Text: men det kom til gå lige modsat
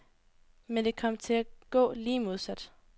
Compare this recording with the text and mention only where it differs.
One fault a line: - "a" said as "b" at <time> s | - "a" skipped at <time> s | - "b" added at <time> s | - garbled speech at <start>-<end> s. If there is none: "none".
none